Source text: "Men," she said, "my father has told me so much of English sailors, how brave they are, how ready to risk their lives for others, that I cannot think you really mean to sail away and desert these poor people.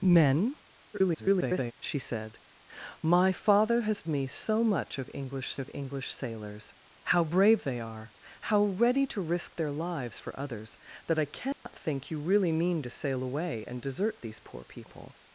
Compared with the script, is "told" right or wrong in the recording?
wrong